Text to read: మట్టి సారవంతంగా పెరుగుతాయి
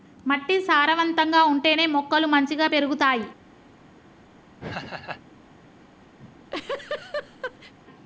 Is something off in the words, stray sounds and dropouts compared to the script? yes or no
yes